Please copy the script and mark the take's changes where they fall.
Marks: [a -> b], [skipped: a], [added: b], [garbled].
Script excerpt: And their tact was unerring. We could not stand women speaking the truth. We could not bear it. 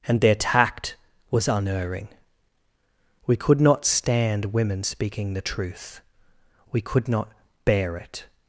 And their tact was unerring. We could not stand women speaking the truth. We could not bear it.